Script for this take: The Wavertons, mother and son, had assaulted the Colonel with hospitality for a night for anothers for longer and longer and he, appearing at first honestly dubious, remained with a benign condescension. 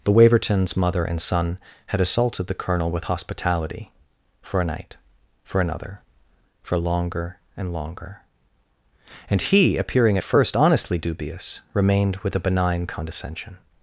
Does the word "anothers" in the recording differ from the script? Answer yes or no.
yes